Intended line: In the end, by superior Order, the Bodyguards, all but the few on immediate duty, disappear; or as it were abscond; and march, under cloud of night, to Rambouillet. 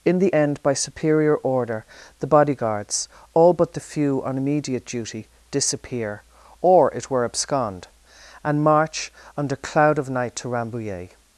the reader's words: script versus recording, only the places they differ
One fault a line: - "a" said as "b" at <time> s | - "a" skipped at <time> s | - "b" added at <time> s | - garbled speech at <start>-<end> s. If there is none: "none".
- "as" skipped at 6.9 s